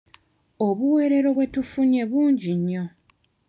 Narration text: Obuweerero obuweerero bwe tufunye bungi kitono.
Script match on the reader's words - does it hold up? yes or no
no